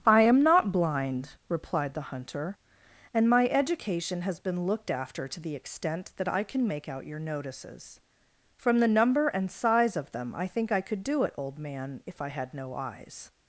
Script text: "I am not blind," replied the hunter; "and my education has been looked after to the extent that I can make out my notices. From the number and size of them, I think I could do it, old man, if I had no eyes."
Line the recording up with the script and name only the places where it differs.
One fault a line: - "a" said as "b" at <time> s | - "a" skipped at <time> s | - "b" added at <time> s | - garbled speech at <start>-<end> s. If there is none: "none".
- "my" said as "your" at 7.0 s